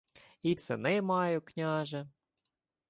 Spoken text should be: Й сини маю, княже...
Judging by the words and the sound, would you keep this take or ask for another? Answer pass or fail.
pass